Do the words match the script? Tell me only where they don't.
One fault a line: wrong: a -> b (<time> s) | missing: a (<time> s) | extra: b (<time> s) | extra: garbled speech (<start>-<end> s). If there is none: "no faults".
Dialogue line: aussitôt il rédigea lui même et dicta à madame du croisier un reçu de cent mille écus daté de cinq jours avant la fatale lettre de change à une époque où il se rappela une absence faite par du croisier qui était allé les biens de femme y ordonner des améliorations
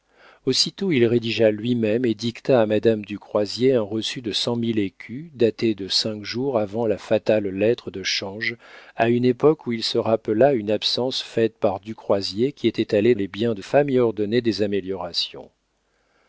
no faults